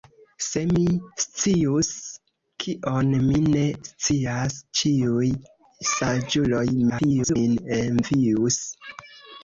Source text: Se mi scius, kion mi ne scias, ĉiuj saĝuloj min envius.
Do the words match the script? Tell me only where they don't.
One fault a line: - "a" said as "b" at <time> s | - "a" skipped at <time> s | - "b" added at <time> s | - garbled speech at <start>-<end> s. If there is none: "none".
- garbled speech at 6.9-7.4 s